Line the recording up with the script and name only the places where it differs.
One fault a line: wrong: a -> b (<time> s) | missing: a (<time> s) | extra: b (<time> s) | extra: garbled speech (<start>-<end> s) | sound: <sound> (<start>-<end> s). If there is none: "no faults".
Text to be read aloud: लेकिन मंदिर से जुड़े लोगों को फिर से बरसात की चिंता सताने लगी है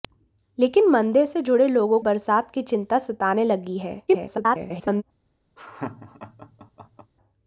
missing: को फिर से (2.0 s)
extra: garbled speech (4.1-5.0 s)
sound: laugh (5.6-7.1 s)